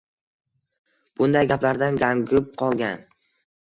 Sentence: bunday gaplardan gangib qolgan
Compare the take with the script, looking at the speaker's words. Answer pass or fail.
pass